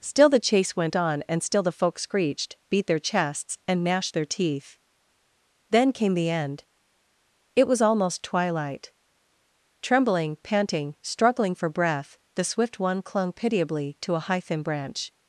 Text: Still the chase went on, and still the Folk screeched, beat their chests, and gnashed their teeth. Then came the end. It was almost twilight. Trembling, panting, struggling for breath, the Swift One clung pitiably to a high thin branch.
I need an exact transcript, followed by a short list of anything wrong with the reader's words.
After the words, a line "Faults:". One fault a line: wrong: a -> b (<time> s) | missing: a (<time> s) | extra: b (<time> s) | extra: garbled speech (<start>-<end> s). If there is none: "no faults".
Still the chase went on, and still the Folk screeched, beat their chests, and gnashed their teeth. Then came the end. It was almost twilight. Trembling, panting, struggling for breath, the Swift One clung pitiably to a high thin branch.
Faults:
no faults